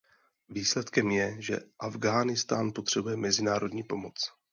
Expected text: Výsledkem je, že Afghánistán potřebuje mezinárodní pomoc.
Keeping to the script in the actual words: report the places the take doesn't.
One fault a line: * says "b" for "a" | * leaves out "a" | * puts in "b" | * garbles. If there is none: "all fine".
all fine